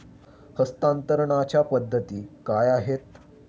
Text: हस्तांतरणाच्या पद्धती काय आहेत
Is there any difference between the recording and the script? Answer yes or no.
no